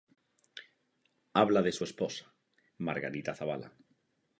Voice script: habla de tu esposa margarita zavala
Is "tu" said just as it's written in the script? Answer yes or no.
no